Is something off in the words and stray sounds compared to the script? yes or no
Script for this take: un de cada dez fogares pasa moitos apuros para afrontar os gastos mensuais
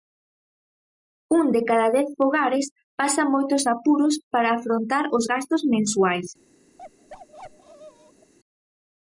yes